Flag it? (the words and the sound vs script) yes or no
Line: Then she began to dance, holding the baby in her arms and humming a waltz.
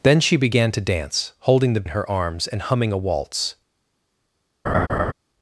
yes